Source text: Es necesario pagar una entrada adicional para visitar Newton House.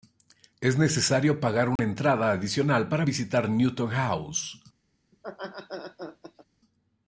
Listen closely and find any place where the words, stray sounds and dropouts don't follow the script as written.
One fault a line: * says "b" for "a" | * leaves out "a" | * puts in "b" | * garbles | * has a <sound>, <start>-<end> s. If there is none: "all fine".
* has a dropout, 1.8-1.8 s
* has a laugh, 5.1-6.5 s